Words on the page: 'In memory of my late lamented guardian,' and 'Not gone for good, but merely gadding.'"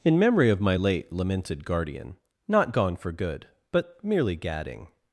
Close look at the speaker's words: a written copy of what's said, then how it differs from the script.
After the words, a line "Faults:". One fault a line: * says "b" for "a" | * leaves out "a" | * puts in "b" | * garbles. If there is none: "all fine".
'In memory of my late lamented guardian,' 'Not gone for good, but merely gadding.'"
Faults:
* leaves out "and"